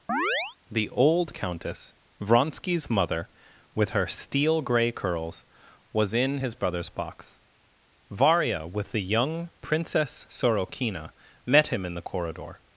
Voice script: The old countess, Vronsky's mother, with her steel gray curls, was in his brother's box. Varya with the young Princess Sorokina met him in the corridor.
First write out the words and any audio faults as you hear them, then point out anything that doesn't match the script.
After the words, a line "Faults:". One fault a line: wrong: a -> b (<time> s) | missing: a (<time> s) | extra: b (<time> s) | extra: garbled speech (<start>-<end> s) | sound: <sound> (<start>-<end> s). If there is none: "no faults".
The old countess, Vronsky's mother, with her steel gray curls, was in his brother's box. Varya with the young Princess Sorokina met him in the corridor.
Faults:
sound: chirp (0.1-0.6 s)